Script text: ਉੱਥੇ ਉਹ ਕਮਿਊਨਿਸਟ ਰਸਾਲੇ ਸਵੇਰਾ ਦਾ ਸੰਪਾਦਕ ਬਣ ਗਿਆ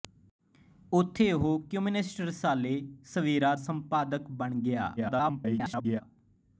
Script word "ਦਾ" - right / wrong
wrong